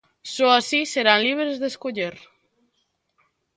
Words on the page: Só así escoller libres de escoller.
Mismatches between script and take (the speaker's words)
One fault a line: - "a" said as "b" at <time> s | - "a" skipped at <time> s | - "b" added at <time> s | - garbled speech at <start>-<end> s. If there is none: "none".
- "escoller" said as "serán" at 0.9 s